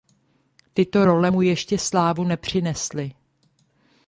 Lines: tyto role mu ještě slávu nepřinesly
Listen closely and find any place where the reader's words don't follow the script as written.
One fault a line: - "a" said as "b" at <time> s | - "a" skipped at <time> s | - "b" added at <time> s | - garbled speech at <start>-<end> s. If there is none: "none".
none